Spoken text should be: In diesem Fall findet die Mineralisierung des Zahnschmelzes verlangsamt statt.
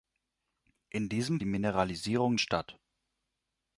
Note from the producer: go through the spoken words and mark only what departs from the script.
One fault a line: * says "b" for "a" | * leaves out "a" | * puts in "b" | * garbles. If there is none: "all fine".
* leaves out "Fall findet"
* leaves out "des Zahnschmelzes verlangsamt"